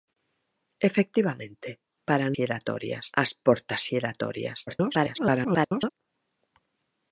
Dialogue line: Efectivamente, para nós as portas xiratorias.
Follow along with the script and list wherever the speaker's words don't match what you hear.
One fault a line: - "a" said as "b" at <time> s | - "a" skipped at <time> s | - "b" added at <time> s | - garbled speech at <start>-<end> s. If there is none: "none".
- "nós" said as "xiratorias" at 2.3 s
- garbled speech at 4.7-5.9 s